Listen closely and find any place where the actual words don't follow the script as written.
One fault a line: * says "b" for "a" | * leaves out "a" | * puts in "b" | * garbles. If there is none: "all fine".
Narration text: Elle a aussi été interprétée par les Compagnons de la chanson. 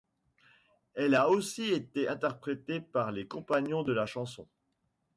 all fine